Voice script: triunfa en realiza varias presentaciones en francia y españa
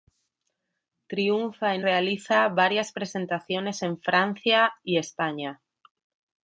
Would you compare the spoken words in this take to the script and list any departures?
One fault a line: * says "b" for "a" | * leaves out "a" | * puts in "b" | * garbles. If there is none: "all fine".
all fine